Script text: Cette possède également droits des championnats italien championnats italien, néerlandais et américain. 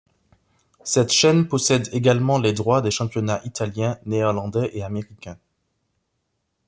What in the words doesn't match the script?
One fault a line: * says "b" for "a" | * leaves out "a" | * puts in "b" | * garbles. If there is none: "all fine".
* puts in "chaîne"
* puts in "les"
* leaves out "championnats italien"